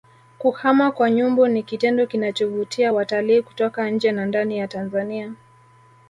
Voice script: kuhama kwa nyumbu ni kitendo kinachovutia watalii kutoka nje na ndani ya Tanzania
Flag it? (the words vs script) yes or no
no